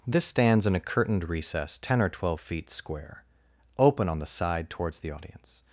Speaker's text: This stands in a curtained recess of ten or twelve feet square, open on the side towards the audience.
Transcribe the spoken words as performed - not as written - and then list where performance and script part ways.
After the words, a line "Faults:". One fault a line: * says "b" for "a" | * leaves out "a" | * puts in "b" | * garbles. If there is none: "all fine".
This stands in a curtained recess ten or twelve feet square, open on the side towards the audience.
Faults:
* leaves out "of"